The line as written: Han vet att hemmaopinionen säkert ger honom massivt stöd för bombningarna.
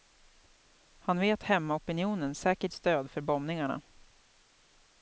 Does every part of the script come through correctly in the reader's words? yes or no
no